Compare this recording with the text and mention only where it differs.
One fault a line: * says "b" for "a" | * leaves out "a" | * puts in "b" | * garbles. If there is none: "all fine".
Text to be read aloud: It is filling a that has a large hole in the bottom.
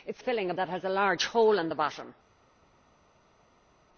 all fine